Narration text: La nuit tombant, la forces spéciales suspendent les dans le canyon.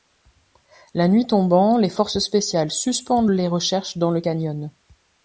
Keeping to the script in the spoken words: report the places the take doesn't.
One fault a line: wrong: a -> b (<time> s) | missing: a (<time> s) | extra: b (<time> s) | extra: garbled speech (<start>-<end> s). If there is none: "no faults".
wrong: la -> les (1.8 s)
extra: recherches (3.5 s)